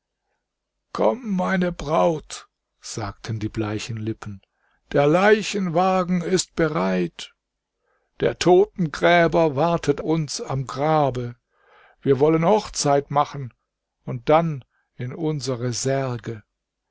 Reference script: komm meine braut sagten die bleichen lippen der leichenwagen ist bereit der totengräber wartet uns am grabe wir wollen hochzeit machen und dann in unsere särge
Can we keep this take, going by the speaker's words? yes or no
yes